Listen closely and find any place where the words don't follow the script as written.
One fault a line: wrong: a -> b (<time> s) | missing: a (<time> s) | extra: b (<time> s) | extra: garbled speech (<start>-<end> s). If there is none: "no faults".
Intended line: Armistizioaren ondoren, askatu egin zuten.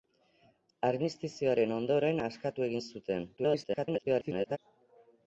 extra: garbled speech (3.4-4.6 s)